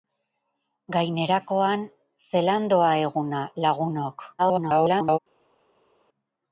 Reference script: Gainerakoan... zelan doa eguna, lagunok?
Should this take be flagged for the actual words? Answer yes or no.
yes